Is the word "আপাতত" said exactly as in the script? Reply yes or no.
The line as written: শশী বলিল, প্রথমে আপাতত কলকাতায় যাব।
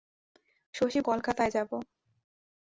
no